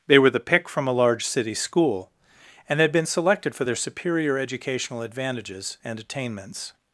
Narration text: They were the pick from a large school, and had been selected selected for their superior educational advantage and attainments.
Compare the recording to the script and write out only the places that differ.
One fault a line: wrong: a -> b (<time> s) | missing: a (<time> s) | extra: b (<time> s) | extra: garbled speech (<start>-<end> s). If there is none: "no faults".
extra: city (1.2 s)
missing: selected (3.5 s)
wrong: advantage -> advantages (5.0 s)